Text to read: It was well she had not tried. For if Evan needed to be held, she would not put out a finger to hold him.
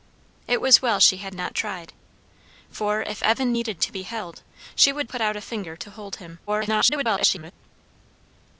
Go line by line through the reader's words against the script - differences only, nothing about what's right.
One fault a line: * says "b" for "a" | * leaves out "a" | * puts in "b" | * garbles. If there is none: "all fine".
* leaves out "not"
* garbles